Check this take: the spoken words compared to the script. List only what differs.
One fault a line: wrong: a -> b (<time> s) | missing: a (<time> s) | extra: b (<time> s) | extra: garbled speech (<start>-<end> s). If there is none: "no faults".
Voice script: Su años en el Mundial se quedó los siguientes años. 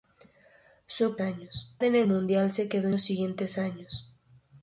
no faults